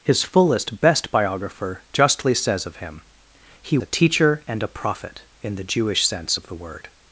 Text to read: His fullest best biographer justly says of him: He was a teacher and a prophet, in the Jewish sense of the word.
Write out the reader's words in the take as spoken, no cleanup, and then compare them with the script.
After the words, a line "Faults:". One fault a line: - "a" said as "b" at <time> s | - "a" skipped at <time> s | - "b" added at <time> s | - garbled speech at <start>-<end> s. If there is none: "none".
His fullest best biographer justly says of him: He a teacher and a prophet, in the Jewish sense of the word.
Faults:
- "was" skipped at 3.8 s